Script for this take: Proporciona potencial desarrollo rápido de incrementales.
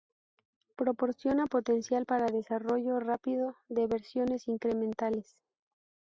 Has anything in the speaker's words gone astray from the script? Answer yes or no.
yes